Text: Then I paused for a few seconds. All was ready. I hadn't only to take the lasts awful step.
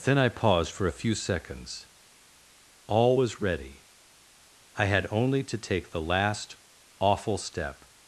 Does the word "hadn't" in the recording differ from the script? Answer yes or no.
yes